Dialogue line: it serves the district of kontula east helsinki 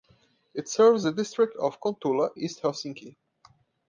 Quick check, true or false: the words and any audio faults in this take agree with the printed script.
true